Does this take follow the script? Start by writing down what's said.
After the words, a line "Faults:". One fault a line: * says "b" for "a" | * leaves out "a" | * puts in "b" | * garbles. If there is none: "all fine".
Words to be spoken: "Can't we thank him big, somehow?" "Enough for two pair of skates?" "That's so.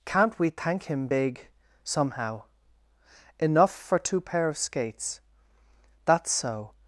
"Can't we thank him big, somehow?" "Enough for two pair of skates?" "That's so.
Faults:
all fine